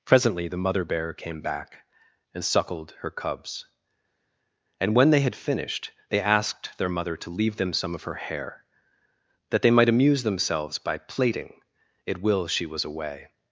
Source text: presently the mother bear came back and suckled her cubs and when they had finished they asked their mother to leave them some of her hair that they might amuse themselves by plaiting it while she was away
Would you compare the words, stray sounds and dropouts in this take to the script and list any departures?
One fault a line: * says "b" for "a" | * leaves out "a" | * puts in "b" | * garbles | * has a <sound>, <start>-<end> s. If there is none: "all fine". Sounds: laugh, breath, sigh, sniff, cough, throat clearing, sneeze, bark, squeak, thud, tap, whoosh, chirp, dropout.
* says "will" for "while"